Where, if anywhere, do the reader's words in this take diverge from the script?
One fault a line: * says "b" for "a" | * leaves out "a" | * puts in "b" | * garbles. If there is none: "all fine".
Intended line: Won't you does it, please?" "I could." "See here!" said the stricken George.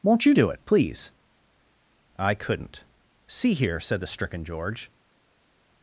* says "do" for "does"
* says "couldn't" for "could"